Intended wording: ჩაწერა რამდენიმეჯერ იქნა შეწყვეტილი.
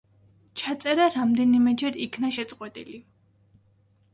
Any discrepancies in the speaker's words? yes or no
no